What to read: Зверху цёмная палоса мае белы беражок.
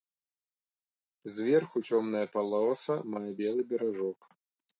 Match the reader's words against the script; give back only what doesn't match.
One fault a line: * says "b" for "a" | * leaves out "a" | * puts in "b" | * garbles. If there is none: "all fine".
all fine